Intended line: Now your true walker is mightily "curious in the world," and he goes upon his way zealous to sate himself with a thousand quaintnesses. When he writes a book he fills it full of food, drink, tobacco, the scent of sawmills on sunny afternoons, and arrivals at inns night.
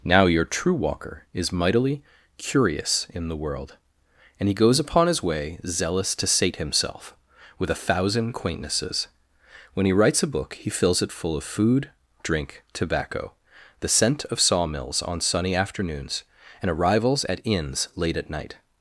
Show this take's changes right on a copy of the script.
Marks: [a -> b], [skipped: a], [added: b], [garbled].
Now your true walker is mightily "curious in the world," and he goes upon his way zealous to sate himself with a thousand quaintnesses. When he writes a book he fills it full of food, drink, tobacco, the scent of sawmills on sunny afternoons, and arrivals at inns [added: late at] night.